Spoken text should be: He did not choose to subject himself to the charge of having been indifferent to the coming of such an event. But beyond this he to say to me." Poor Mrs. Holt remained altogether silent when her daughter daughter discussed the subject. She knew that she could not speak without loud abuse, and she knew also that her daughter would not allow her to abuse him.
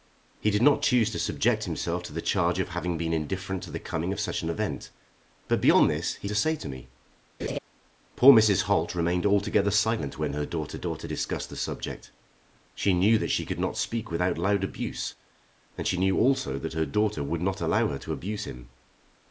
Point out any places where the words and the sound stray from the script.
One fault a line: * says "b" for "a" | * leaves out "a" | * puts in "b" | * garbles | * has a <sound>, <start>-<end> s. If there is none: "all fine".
* has a laugh, 7.4-7.6 s